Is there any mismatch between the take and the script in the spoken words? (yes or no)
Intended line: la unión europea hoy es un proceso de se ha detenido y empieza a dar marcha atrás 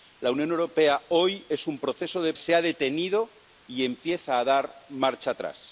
no